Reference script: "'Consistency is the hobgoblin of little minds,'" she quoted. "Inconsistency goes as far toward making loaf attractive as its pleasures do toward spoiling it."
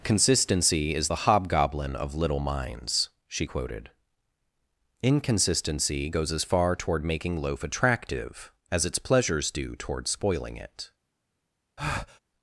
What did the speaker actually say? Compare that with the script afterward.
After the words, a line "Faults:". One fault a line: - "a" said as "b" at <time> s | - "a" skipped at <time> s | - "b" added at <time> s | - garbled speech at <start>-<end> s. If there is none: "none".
"'Consistency is the hobgoblin of little minds,'" she quoted. "Inconsistency goes as far toward making loaf attractive as its pleasures do toward spoiling it."
Faults:
none